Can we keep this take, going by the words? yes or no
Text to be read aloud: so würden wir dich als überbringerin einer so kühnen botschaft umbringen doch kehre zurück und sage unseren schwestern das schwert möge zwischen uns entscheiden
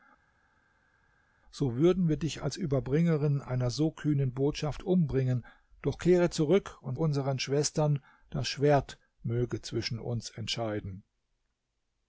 no